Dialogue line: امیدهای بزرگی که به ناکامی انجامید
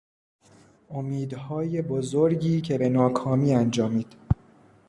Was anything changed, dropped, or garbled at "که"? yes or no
no